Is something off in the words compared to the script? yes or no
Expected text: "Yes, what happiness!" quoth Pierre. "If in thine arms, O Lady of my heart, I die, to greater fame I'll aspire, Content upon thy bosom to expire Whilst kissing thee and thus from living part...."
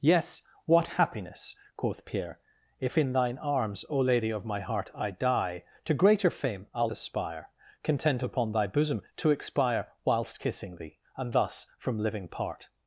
no